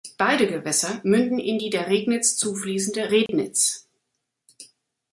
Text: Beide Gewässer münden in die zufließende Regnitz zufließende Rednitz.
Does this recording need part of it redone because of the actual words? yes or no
yes